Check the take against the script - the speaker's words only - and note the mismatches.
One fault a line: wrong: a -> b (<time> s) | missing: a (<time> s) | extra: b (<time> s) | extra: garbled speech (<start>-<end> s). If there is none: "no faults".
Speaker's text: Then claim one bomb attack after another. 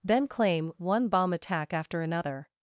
no faults